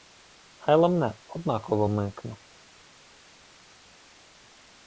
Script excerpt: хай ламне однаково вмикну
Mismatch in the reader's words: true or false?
false